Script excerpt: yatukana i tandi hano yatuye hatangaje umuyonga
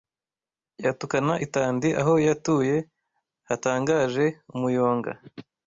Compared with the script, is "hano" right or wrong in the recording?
wrong